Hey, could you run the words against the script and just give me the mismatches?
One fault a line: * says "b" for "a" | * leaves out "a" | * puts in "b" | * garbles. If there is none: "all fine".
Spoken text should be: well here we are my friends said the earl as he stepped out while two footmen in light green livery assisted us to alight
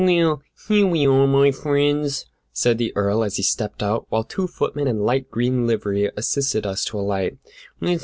all fine